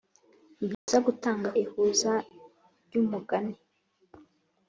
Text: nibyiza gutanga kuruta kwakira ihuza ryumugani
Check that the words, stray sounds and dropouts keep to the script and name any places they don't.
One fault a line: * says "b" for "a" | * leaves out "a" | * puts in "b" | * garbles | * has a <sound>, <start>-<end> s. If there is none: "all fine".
* has a dropout, 0.7-0.9 s
* leaves out "kuruta kwakira"